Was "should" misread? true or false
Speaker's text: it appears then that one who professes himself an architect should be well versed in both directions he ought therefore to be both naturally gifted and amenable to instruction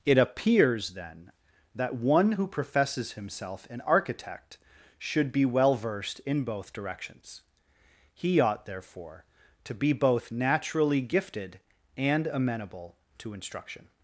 false